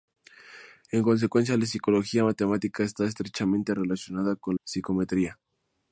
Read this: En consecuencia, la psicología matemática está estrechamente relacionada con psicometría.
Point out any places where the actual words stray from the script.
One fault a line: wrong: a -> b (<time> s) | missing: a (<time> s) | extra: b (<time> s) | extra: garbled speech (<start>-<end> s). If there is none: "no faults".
no faults